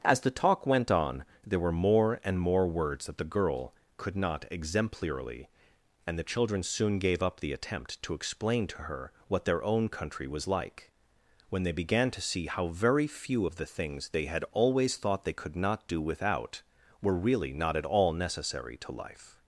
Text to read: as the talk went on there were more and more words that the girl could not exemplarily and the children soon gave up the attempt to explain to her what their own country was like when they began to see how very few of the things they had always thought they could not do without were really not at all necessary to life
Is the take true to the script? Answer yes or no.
yes